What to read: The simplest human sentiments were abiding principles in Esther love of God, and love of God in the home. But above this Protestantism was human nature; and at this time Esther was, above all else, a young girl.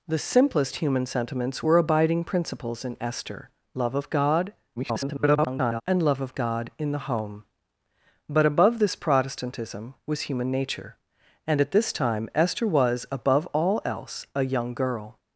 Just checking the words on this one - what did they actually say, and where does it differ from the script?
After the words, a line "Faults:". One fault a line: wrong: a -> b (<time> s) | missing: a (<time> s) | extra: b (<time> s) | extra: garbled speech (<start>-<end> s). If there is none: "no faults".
The simplest human sentiments were abiding principles in Esther love of God, [garbled] and love of God in the home. But above this Protestantism was human nature; and at this time Esther was, above all else, a young girl.
Faults:
extra: garbled speech (4.8-5.8 s)